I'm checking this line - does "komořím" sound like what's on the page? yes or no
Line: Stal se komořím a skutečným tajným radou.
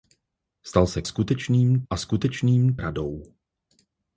no